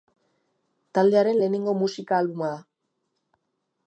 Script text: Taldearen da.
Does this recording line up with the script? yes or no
no